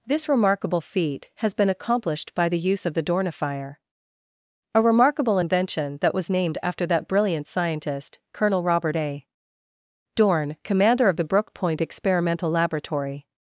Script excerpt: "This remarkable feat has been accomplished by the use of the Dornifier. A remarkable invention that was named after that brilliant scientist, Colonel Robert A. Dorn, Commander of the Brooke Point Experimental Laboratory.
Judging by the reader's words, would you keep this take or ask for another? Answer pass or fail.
pass